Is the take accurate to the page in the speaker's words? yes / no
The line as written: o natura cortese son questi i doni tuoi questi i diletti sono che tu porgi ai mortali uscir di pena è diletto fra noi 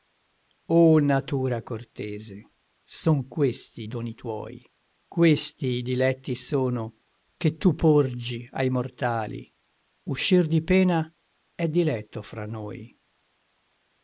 yes